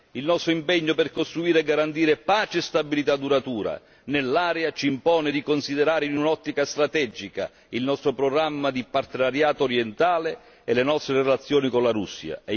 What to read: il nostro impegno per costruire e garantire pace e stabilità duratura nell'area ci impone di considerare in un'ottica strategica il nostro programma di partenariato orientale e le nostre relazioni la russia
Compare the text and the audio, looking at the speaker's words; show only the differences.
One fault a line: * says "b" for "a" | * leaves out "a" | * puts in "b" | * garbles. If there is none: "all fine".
* puts in "con"